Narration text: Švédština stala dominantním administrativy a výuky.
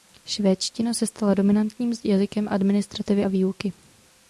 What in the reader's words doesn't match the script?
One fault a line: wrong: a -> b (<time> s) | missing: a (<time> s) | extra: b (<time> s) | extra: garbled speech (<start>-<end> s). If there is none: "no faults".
extra: se (0.9 s)
extra: jazykem (2.0 s)